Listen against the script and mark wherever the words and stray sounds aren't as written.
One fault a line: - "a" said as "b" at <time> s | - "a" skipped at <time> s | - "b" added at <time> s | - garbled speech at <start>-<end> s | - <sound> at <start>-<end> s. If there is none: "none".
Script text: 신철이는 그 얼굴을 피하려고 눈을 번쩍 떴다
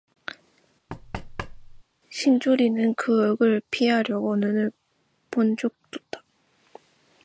- thud at 0.9-1.8 s